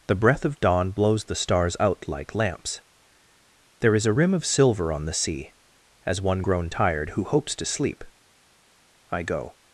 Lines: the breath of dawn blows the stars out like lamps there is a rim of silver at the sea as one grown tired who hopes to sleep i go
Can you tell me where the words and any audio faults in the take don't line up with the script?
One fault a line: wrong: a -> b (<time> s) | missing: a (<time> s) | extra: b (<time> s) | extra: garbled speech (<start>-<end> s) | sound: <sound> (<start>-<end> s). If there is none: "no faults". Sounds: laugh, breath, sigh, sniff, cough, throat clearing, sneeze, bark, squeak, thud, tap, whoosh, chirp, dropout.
wrong: at -> on (4.9 s)